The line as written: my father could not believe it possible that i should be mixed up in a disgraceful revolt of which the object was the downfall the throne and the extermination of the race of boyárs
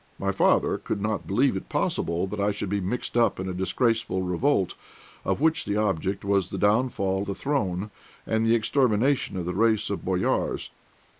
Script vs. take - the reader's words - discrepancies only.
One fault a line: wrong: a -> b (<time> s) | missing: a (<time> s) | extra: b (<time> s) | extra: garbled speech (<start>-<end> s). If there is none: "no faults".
no faults